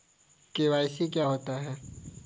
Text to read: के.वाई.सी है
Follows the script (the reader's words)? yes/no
no